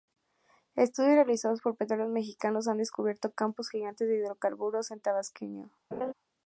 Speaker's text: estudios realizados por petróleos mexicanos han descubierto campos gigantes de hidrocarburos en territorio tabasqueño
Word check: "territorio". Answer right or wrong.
wrong